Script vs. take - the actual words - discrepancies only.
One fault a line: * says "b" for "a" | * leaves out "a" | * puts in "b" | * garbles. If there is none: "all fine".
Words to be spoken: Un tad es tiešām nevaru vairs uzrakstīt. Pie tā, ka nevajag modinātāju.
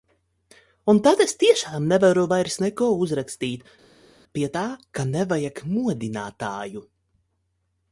* puts in "neko"